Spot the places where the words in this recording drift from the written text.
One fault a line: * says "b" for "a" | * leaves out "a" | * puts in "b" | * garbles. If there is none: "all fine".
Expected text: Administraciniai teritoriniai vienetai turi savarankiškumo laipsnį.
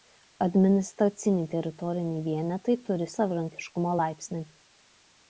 all fine